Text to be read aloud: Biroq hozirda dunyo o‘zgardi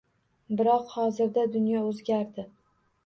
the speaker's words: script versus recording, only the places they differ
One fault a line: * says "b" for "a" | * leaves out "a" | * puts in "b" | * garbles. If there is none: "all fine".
all fine